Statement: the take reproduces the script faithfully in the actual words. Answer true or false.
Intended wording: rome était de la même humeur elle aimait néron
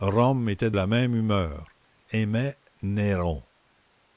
false